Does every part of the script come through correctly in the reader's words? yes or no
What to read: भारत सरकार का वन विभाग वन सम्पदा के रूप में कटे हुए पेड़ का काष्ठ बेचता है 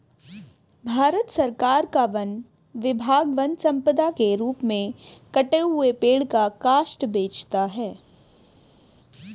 yes